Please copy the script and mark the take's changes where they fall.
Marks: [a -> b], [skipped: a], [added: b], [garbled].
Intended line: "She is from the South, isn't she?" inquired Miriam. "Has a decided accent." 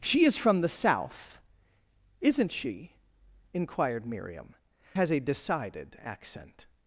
"She is from the South, isn't she?" inquired Miriam. "Has a decided accent."